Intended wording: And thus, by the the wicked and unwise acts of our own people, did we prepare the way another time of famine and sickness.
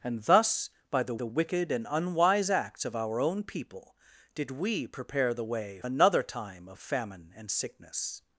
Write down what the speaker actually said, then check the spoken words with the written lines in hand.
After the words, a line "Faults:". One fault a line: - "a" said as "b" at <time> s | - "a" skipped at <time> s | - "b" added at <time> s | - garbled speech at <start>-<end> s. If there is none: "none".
And thus, by the the wicked and unwise acts of our own people, did we prepare the way another time of famine and sickness.
Faults:
none